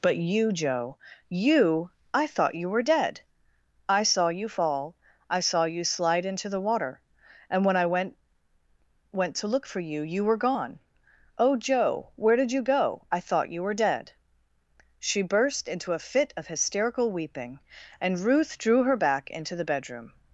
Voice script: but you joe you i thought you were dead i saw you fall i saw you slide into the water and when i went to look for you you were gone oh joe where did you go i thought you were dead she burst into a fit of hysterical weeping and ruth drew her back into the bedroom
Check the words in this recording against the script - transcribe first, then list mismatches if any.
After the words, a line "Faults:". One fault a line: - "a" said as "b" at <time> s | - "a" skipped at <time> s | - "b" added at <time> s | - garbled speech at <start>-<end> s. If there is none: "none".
but you joe you i thought you were dead i saw you fall i saw you slide into the water and when i went went to look for you you were gone oh joe where did you go i thought you were dead she burst into a fit of hysterical weeping and ruth drew her back into the bedroom
Faults:
- "went" added at 9.1 s